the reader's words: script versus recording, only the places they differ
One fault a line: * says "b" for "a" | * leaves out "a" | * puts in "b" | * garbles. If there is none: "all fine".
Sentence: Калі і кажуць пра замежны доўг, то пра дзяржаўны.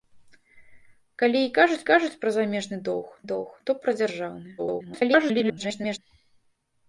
* puts in "кажуць"
* puts in "доўг"
* garbles